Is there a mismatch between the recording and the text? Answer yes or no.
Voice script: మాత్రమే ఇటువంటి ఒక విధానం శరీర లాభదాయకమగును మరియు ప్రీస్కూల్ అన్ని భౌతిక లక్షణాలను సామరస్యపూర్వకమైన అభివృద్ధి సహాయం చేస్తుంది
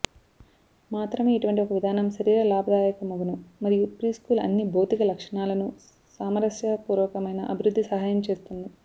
no